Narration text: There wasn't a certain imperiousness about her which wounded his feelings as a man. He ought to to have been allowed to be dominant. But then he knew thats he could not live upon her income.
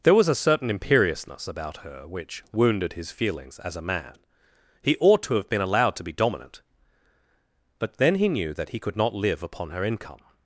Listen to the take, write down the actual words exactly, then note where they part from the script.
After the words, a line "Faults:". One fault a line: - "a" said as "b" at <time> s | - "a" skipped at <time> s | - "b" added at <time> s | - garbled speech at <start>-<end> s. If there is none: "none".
There was a certain imperiousness about her which wounded his feelings as a man. He ought to have been allowed to be dominant. But then he knew that he could not live upon her income.
Faults:
- "wasn't" said as "was" at 0.1 s
- "to" skipped at 5.3 s
- "thats" said as "that" at 8.5 s